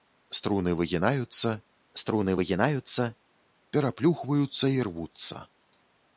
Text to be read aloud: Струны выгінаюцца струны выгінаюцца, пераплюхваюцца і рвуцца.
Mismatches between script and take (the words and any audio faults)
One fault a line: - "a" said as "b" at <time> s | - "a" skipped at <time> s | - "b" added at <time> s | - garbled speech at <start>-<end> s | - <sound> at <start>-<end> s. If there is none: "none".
none